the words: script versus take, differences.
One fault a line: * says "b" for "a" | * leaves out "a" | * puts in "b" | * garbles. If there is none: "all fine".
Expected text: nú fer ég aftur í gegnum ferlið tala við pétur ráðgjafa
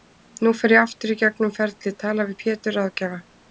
all fine